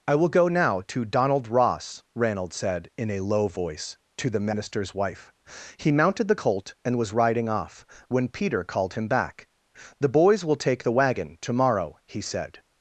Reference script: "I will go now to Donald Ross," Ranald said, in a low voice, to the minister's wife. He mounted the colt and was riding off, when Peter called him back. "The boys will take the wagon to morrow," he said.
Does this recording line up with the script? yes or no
yes